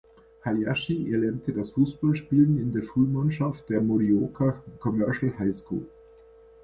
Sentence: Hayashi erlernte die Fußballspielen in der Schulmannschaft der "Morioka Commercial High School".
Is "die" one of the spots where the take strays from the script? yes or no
yes